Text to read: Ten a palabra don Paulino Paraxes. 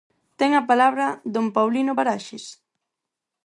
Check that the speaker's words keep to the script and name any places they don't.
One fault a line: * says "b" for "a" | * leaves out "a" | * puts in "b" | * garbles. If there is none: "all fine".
all fine